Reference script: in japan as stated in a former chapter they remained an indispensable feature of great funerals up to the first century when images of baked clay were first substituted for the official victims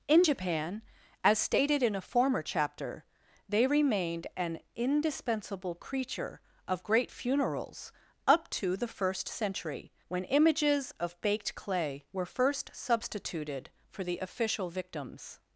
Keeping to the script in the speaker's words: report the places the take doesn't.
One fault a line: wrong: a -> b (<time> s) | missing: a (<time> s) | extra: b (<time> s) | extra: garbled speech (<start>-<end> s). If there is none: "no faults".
wrong: feature -> creature (5.7 s)